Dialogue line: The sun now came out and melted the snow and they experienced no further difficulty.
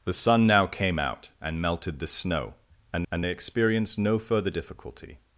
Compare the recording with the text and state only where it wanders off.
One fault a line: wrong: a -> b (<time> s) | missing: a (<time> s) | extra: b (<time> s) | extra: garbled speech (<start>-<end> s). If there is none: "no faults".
extra: and (3.1 s)